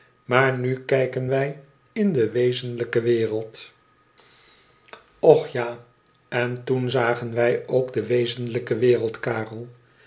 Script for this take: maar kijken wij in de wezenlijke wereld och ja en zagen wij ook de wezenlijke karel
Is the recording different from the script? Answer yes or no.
yes